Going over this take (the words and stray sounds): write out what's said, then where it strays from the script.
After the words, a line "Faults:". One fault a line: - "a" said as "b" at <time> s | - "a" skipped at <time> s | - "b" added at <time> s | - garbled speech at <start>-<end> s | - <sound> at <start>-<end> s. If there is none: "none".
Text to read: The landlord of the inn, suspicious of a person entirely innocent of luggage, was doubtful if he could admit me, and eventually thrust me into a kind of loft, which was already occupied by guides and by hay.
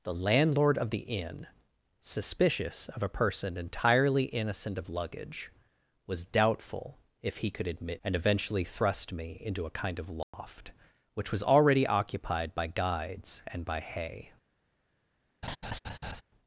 The landlord of the inn, suspicious of a person entirely innocent of luggage, was doubtful if he could admit and eventually thrust me into a kind of loft, which was already occupied by guides and by hay.
Faults:
- "me" skipped at 8.0 s
- dropout at 10.2-10.3 s
- laugh at 15.4-16.2 s